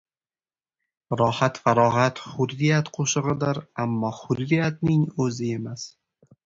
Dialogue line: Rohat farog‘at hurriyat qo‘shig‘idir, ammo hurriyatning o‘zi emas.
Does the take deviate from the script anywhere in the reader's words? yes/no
no